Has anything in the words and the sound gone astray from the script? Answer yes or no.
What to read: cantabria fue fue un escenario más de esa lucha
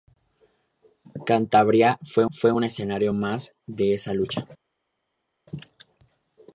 no